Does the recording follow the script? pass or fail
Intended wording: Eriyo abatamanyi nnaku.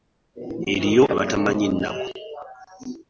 pass